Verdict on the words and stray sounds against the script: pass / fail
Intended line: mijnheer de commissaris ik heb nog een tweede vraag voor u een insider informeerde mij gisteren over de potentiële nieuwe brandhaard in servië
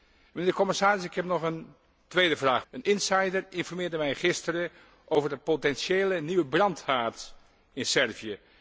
fail